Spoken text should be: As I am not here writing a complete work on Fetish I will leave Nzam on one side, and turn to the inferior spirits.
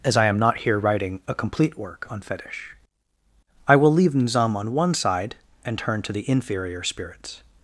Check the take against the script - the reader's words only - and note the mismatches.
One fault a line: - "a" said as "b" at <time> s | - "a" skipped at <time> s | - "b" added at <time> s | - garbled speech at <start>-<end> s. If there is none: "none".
none